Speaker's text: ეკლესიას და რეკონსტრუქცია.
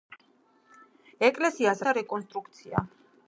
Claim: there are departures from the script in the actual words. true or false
false